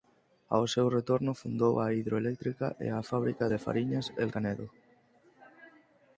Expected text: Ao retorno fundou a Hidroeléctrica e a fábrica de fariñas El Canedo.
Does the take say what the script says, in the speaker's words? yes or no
no